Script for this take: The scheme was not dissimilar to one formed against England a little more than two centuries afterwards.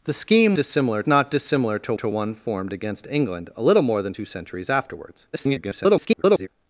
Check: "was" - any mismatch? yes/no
yes